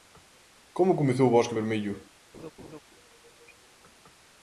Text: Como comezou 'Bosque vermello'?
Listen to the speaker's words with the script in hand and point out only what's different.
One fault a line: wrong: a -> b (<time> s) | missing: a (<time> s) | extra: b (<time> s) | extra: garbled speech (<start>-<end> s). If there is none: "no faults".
no faults